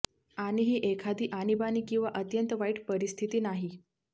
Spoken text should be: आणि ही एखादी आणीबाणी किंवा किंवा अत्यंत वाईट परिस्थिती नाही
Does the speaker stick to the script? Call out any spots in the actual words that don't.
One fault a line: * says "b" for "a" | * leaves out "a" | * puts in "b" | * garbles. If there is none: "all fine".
* leaves out "किंवा"